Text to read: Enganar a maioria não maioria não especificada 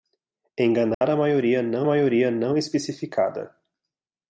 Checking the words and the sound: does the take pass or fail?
fail